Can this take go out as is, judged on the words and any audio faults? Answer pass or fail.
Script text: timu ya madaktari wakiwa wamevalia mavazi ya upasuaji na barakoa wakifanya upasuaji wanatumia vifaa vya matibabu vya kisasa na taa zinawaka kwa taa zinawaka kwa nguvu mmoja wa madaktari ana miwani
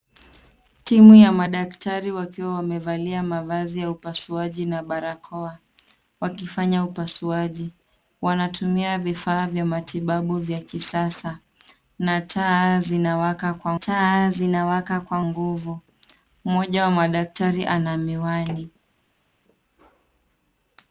pass